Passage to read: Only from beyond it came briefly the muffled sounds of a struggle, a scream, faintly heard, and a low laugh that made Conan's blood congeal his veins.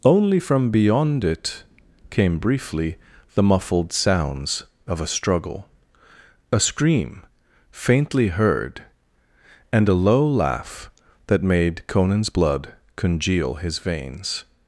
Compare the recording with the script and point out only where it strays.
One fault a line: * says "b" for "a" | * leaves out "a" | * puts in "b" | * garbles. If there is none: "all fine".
all fine